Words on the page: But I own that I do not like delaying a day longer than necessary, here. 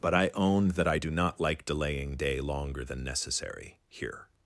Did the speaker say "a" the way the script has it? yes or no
no